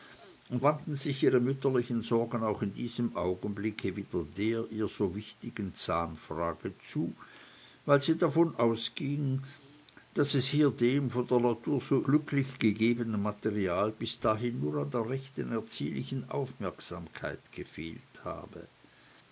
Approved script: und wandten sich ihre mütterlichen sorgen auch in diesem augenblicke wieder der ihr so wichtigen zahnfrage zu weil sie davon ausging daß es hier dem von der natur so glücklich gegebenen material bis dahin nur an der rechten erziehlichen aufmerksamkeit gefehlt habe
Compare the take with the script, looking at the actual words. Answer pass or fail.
pass